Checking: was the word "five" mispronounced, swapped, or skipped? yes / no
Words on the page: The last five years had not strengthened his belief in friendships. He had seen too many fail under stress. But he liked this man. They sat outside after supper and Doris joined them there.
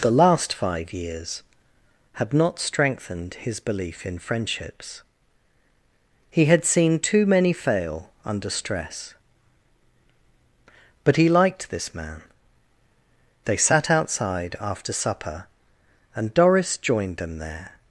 no